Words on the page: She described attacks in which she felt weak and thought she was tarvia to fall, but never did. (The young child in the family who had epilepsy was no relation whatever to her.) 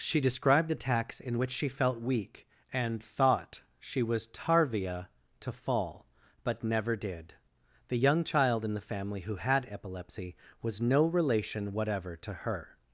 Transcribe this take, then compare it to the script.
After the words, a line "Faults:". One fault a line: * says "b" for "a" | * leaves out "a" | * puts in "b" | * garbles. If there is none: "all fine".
She described attacks in which she felt weak and thought she was tarvia to fall, but never did. (The young child in the family who had epilepsy was no relation whatever to her.)
Faults:
all fine